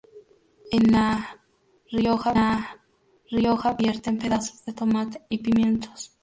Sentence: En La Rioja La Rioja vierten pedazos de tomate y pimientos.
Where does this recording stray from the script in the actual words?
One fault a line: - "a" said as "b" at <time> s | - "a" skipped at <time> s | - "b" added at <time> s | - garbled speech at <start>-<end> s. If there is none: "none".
none